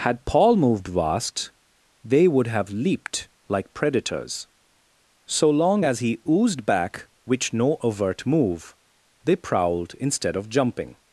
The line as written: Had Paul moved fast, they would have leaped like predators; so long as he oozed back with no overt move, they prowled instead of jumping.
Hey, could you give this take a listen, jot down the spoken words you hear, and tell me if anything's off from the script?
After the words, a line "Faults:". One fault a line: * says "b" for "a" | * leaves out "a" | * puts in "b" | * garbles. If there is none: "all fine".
Had Paul moved vast, they would have leaped like predators; so long as he oozed back which no overt move, they prowled instead of jumping.
Faults:
* says "vast" for "fast"
* says "which" for "with"